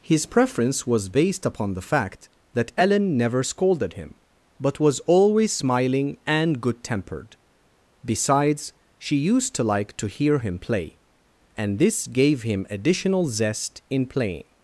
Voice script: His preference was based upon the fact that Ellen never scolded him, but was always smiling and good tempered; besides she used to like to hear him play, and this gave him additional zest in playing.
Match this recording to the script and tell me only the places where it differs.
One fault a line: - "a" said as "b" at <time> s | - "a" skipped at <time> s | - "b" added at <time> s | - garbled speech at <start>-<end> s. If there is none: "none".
none